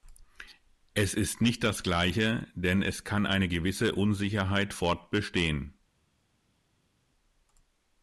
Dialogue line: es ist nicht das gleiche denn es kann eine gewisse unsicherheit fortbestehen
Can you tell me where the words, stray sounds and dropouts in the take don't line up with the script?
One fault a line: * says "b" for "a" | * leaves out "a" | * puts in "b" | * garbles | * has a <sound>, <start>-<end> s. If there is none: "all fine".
all fine